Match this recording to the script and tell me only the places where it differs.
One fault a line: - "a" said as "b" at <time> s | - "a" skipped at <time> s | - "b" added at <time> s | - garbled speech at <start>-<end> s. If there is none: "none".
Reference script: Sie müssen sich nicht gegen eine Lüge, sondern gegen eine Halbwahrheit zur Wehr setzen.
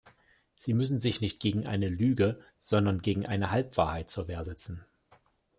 none